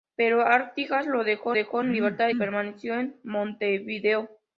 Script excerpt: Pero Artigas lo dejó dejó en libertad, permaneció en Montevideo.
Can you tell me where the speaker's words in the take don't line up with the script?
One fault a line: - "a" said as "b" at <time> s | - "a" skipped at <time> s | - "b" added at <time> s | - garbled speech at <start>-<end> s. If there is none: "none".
none